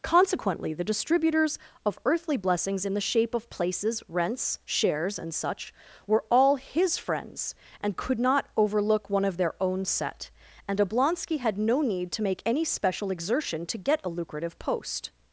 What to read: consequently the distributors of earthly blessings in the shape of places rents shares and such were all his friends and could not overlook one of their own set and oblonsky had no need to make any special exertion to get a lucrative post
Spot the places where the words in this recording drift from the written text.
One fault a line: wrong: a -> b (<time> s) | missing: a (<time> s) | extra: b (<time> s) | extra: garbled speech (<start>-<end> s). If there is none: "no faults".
no faults